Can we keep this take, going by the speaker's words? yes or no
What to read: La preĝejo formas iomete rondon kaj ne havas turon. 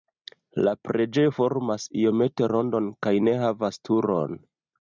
yes